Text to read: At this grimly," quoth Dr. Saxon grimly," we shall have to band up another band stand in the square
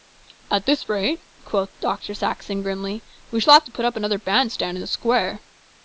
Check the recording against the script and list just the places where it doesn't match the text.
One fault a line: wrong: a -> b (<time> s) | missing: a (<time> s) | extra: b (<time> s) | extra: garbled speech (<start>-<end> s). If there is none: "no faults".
wrong: grimly -> rate (0.9 s)
wrong: band -> put (3.7 s)